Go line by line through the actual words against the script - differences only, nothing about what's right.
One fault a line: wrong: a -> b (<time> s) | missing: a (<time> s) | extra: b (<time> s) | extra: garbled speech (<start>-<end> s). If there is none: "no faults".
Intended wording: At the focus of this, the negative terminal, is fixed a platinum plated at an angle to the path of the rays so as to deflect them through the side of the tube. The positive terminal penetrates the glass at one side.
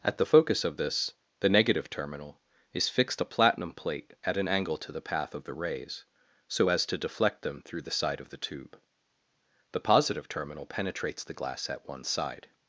wrong: plated -> plate (3.7 s)